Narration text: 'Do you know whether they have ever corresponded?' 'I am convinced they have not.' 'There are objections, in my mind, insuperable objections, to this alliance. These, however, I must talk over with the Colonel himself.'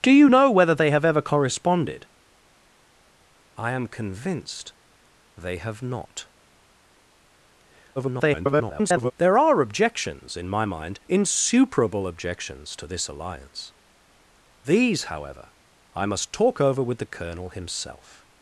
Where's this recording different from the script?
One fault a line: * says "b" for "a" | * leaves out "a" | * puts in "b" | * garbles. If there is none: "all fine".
* garbles